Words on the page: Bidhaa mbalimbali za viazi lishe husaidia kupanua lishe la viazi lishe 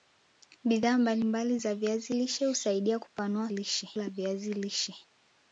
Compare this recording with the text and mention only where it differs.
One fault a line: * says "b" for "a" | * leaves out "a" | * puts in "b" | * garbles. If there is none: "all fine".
all fine